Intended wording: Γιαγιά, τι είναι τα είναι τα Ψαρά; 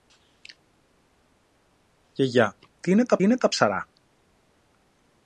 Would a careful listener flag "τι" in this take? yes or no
no